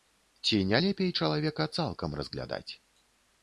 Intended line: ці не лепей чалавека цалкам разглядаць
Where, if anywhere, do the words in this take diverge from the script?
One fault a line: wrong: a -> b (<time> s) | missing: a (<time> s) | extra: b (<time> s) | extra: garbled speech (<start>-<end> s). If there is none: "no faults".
no faults